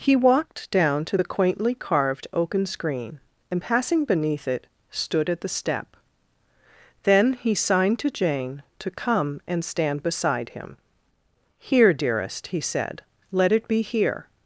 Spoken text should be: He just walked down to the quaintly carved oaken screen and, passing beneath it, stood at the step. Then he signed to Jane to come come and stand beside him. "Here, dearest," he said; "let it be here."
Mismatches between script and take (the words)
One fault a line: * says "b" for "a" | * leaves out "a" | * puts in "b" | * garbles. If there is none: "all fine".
* leaves out "just"
* leaves out "come"